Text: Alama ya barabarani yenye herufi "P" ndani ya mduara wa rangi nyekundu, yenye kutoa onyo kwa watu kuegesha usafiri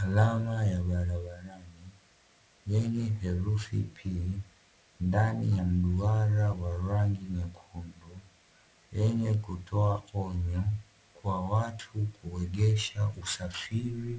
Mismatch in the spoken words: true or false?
false